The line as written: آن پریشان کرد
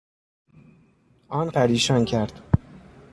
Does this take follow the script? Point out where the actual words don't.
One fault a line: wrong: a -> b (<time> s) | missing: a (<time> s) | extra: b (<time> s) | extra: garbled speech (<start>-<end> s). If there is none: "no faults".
no faults